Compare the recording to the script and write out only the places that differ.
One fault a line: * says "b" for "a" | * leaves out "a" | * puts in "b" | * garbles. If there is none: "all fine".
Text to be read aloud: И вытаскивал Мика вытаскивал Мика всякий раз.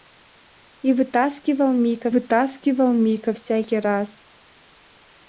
all fine